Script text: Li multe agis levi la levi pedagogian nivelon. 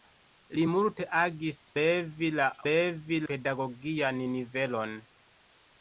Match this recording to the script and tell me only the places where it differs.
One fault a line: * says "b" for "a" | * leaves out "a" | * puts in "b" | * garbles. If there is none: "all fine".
all fine